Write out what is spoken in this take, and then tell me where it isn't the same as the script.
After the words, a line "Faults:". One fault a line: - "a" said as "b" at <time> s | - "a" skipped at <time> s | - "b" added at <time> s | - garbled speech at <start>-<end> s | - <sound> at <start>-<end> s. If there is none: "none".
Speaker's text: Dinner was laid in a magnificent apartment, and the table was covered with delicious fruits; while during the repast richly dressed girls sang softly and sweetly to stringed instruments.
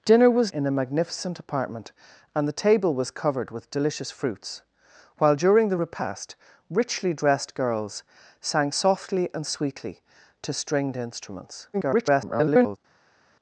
Dinner was in a magnificent apartment, and the table was covered with delicious fruits; while during the repast richly dressed girls sang softly and sweetly to stringed instruments. [garbled]
Faults:
- "laid" skipped at 0.5 s
- garbled speech at 11.7-12.8 s